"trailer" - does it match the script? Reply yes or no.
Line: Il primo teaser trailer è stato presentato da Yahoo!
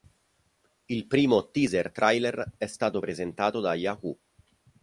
yes